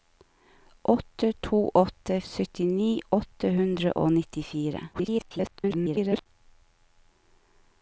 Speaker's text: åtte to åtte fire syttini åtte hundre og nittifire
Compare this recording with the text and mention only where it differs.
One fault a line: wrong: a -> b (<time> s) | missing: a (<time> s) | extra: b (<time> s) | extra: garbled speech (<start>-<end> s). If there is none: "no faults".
missing: fire (2.2 s)
extra: garbled speech (4.9-6.3 s)